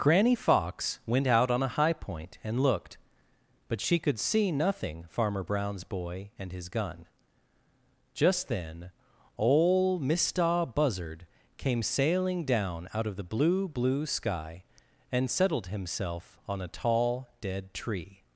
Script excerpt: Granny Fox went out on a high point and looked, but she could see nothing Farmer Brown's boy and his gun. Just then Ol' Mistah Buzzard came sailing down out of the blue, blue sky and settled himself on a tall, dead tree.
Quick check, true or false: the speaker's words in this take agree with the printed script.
true